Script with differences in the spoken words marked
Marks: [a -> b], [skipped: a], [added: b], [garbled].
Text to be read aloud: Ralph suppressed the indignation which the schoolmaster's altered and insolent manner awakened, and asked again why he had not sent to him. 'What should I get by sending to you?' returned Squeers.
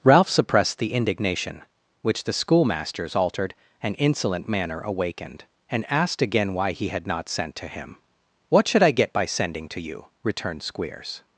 Ralph suppressed the indignation which the schoolmaster's altered and insolent manner awakened, and asked again why he had not sent to him. 'What should I get by sending to you?' returned Squeers.